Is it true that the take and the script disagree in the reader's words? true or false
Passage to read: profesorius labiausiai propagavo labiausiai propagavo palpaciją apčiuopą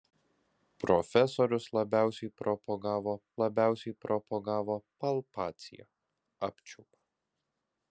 false